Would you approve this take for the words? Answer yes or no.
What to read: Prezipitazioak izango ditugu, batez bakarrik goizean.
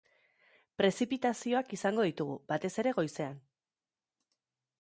no